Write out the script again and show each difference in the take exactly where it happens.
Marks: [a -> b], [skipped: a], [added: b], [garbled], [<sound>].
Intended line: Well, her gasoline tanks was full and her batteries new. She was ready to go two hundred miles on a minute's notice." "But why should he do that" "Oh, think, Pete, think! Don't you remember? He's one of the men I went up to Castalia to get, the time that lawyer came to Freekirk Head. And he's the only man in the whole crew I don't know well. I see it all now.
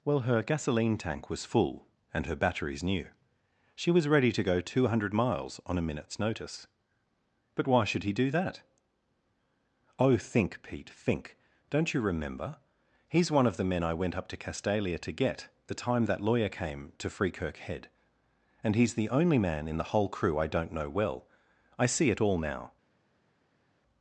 Well, her gasoline [tanks -> tank] was full and her batteries new. She was ready to go two hundred miles on a minute's notice." "But why should he do that" "Oh, think, Pete, think! Don't you remember? He's one of the men I went up to Castalia to get, the time that lawyer came to Freekirk Head. And he's the only man in the whole crew I don't know well. I see it all now.